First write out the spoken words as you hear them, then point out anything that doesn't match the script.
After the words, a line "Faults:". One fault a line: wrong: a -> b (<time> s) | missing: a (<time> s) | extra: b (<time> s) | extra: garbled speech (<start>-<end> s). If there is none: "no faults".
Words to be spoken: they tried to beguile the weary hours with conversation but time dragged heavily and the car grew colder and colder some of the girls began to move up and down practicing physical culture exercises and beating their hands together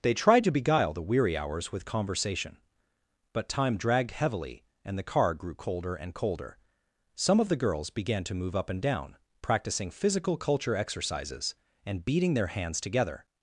they tried to beguile the weary hours with conversation but time dragged heavily and the car grew colder and colder some of the girls began to move up and down practicing physical culture exercises and beating their hands together
Faults:
no faults